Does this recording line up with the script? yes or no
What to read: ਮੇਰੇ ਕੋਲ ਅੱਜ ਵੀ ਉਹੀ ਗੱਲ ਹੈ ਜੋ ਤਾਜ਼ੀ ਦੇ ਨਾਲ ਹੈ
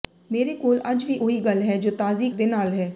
yes